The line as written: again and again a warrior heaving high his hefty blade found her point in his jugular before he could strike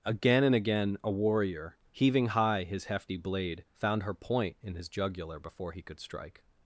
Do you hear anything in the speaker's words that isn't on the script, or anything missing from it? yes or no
no